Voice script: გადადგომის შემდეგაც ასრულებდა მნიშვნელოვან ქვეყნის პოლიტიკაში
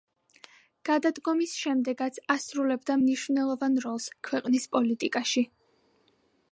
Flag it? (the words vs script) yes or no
yes